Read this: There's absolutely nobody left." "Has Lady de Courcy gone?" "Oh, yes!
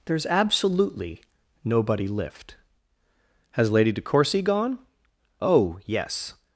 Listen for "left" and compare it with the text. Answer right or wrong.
wrong